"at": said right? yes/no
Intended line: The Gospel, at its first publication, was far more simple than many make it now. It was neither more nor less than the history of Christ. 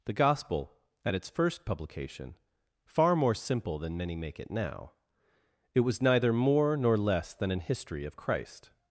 yes